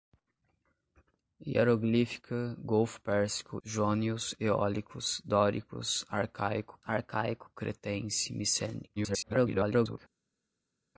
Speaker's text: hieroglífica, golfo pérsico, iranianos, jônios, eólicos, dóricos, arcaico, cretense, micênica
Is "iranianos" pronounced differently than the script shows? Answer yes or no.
yes